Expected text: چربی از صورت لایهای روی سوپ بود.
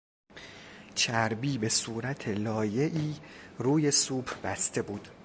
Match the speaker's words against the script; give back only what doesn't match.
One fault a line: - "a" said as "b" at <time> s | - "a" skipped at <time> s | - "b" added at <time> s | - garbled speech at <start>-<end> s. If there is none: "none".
- "از" said as "به" at 1.6 s
- "بسته" added at 4.4 s